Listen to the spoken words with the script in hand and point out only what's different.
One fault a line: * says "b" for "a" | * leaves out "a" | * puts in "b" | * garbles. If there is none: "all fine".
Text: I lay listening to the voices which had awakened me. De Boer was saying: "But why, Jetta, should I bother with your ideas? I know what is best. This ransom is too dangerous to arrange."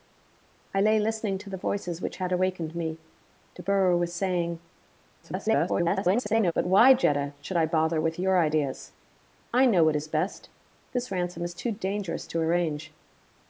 * garbles